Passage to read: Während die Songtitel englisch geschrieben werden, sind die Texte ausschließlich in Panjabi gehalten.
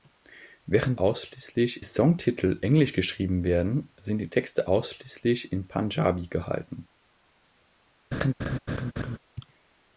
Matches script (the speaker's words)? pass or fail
fail